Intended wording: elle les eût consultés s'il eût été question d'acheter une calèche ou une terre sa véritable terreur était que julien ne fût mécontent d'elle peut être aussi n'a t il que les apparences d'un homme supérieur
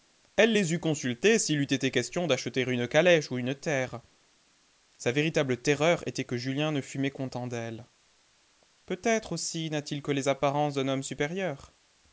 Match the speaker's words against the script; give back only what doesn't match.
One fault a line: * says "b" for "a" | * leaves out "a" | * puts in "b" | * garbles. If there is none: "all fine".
all fine